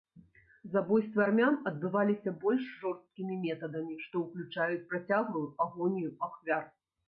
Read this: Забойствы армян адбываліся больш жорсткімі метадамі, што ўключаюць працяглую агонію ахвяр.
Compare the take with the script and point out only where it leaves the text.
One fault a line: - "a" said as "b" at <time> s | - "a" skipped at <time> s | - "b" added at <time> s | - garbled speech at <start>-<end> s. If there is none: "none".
none